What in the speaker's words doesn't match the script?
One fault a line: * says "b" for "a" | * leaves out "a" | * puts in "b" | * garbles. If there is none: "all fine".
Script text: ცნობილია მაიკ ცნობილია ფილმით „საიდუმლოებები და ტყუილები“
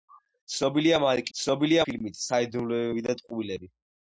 all fine